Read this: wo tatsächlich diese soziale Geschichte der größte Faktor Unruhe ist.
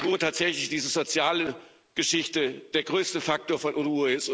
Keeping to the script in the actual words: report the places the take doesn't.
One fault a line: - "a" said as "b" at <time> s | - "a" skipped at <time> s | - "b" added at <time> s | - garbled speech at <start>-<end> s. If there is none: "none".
- "von" added at 3.6 s